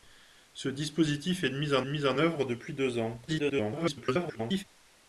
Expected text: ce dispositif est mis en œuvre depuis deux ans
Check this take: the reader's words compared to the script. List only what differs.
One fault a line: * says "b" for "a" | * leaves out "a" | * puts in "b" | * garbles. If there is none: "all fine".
* puts in "mis en"
* garbles